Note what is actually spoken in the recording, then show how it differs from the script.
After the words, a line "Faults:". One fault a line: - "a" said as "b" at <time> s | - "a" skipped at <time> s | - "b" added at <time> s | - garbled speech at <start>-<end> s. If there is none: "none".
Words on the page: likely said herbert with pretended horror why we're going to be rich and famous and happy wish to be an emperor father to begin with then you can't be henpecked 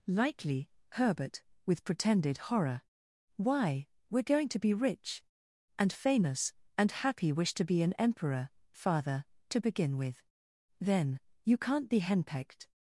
likely herbert with pretended horror why we're going to be rich and famous and happy wish to be an emperor father to begin with then you can't be henpecked
Faults:
- "said" skipped at 0.7 s